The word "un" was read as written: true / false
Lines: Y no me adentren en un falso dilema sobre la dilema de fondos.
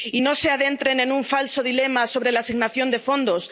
true